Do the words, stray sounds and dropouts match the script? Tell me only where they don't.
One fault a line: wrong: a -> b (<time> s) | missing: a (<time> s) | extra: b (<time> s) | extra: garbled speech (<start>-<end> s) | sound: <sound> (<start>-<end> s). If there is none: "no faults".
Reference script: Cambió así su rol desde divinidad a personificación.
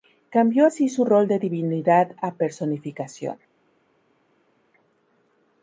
wrong: desde -> de (1.3 s)